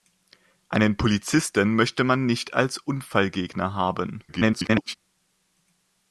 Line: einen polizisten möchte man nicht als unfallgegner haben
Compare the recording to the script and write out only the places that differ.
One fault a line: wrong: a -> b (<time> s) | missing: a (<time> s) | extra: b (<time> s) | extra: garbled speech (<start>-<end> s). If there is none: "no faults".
extra: garbled speech (4.3-4.9 s)